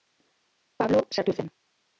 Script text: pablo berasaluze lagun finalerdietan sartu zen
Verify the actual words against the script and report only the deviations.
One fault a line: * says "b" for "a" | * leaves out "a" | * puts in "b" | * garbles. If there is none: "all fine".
* leaves out "berasaluze lagun finalerdietan"